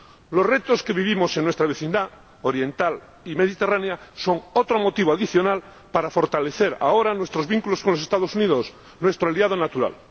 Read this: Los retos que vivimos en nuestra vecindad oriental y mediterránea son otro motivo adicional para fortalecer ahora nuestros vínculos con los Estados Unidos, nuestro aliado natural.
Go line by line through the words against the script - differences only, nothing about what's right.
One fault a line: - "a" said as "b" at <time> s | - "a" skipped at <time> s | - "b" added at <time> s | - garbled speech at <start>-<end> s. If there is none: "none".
none